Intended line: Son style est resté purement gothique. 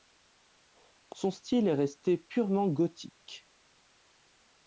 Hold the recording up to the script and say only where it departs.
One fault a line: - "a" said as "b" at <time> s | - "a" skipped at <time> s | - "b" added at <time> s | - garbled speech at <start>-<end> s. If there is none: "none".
none